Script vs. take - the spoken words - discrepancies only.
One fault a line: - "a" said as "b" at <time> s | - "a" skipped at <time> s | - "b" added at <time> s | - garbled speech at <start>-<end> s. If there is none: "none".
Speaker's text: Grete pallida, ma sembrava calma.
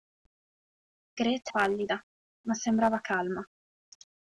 none